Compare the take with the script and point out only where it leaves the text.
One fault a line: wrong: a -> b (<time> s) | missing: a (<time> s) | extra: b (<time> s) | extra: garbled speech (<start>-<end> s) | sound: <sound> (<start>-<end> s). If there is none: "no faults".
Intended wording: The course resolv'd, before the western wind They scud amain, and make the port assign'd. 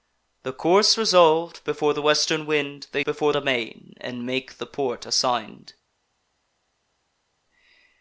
wrong: scud -> before (3.0 s)